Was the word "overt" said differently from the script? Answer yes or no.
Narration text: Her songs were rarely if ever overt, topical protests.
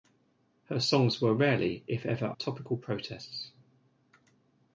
yes